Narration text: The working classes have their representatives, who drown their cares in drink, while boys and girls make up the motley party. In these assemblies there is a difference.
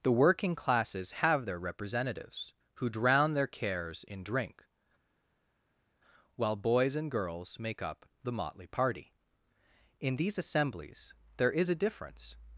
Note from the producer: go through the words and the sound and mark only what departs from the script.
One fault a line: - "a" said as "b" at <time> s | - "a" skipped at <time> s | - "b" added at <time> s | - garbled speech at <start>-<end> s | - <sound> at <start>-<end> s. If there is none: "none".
none